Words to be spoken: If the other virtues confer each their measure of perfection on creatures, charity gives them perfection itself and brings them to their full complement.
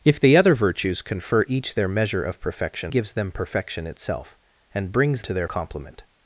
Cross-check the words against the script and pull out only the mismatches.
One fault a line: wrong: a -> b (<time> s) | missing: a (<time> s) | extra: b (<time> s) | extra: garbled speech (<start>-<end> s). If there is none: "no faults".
missing: on creatures charity (2.9 s)
missing: them (5.2 s)
missing: full (5.5 s)